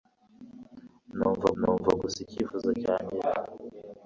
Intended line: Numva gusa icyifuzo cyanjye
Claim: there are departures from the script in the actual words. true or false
true